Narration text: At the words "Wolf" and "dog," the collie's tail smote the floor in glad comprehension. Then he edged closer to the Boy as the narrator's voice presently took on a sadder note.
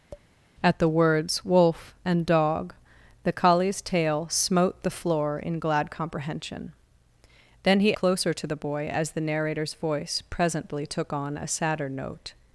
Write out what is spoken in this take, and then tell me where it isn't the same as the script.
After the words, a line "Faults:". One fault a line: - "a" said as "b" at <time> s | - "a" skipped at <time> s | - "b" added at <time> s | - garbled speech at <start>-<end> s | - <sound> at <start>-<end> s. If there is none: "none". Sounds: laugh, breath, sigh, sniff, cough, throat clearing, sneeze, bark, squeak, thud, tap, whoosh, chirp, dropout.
At the words "Wolf" and "dog," the collie's tail smote the floor in glad comprehension. Then he closer to the Boy as the narrator's voice presently took on a sadder note.
Faults:
- tap at 0.1-0.3 s
- "edged" skipped at 7.9 s